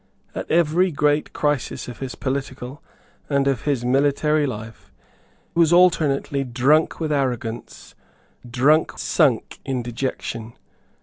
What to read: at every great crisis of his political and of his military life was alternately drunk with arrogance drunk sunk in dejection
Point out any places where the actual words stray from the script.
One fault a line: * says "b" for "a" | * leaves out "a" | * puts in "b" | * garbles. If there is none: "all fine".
all fine